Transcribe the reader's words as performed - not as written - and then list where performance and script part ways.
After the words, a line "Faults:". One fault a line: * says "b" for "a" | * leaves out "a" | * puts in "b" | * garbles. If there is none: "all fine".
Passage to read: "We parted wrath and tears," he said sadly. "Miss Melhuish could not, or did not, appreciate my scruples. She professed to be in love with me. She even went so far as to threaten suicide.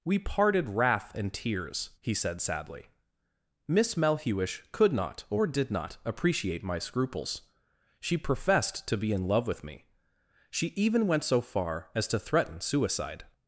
"We parted wrath and tears," he said sadly. "Miss Melhuish could not, or did not, appreciate my scruples. She professed to be in love with me. She even went so far as to threaten suicide.
Faults:
all fine